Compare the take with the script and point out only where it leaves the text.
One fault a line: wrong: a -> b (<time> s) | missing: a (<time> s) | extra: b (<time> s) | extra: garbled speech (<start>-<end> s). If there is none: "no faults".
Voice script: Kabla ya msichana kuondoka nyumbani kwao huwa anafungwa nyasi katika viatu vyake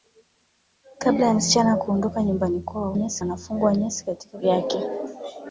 wrong: huwa -> nyasi (2.9 s)
missing: viatu (4.4 s)